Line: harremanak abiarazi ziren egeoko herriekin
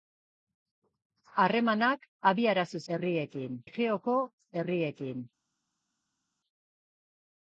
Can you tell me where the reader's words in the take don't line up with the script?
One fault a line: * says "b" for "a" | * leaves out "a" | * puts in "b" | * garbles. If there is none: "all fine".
* says "herriekin" for "ziren"